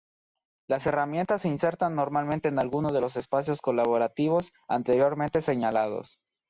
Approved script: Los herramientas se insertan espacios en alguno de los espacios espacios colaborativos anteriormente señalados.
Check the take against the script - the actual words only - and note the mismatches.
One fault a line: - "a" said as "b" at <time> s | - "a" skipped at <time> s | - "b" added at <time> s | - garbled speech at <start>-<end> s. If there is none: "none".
- "Los" said as "Las" at 0.7 s
- "espacios" said as "normalmente" at 1.9 s
- "espacios" skipped at 3.6 s